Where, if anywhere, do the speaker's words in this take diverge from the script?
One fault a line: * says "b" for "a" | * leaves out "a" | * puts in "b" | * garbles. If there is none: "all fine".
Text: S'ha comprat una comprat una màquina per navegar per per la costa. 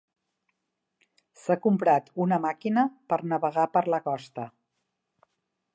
* leaves out "comprat una"
* leaves out "per"